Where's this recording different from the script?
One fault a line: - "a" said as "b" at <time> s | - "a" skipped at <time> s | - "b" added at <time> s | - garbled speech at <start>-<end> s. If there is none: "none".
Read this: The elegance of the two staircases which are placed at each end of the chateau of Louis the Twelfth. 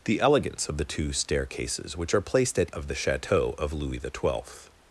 - "each end" skipped at 2.7 s